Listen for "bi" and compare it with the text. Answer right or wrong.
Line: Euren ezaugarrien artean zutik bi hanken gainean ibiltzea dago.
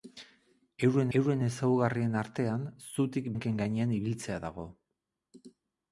wrong